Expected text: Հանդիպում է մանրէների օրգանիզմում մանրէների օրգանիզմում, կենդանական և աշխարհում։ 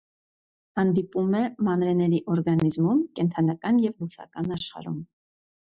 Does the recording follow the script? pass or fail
fail